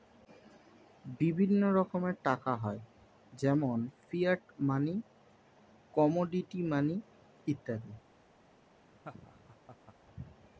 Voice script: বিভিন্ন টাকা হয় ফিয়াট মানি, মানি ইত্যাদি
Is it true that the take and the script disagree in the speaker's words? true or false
true